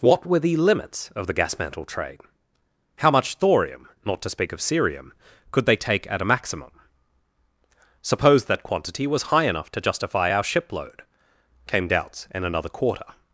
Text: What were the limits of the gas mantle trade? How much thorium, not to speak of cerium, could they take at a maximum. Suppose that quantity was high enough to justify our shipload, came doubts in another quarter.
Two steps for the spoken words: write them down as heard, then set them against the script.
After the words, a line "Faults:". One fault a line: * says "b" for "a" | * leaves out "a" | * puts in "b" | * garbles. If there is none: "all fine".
What were the limits of the gas mantle trade? How much thorium, not to speak of cerium, could they take at a maximum. Suppose that quantity was high enough to justify our shipload, came doubts in another quarter.
Faults:
all fine